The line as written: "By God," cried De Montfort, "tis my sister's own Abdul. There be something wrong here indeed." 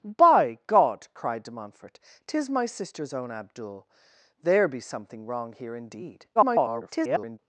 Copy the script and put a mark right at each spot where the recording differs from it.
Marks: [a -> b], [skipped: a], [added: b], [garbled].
"By God," cried De Montfort, "tis my sister's own Abdul. There be something wrong here indeed." [garbled]